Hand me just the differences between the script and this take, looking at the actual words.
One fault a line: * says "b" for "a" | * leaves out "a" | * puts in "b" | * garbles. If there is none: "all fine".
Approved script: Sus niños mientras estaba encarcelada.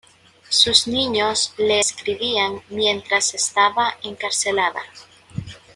* puts in "le escribían"